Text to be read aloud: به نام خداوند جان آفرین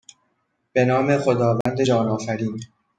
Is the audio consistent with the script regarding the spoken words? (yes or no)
yes